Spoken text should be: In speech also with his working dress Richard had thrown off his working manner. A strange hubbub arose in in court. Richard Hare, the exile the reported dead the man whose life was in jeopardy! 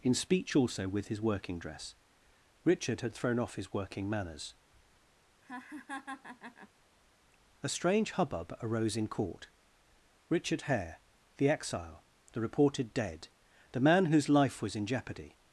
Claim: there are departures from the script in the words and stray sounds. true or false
true